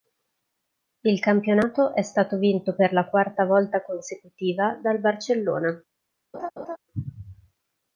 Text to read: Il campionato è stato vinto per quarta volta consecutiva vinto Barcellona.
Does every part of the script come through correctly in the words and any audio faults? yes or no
no